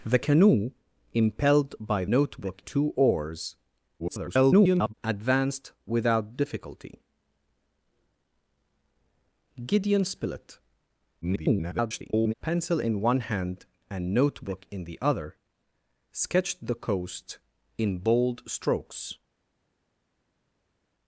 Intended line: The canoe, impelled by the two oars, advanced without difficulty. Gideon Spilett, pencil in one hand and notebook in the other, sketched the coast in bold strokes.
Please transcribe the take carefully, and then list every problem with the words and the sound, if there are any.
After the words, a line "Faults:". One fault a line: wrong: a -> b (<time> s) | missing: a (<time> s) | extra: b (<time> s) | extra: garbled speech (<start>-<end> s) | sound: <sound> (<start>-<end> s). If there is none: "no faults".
The canoe, impelled by notebook two oars, [garbled] advanced without difficulty. Gideon Spilett, [garbled] pencil in one hand and notebook in the other, sketched the coast in bold strokes.
Faults:
wrong: the -> notebook (2.1 s)
extra: garbled speech (4.0-4.9 s)
extra: garbled speech (11.2-12.3 s)